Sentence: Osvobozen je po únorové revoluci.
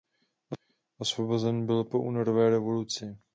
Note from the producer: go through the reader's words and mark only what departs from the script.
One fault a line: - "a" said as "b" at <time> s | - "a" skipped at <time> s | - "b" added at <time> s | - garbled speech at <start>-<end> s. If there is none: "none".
- "je" said as "byl" at 1.6 s